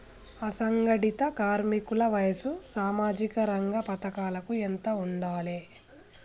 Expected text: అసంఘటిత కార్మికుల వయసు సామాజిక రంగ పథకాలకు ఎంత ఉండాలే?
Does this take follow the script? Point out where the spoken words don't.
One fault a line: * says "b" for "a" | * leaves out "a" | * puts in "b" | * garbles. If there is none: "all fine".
all fine